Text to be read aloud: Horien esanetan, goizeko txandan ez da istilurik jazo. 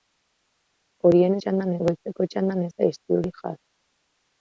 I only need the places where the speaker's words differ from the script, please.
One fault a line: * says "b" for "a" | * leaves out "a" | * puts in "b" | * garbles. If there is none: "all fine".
* says "txandan" for "esanetan"